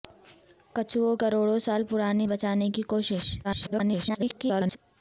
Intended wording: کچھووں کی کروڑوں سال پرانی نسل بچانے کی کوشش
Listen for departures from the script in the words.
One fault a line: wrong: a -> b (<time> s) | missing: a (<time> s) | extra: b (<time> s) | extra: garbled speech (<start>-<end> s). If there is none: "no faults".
missing: کی (1.1 s)
missing: نسل (2.3 s)
extra: garbled speech (3.4-4.8 s)